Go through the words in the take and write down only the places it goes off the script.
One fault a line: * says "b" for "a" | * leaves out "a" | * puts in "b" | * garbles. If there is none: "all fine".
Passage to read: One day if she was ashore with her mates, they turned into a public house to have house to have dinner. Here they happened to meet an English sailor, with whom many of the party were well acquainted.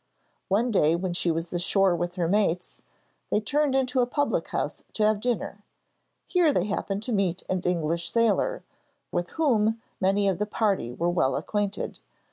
* says "when" for "if"
* leaves out "house to have"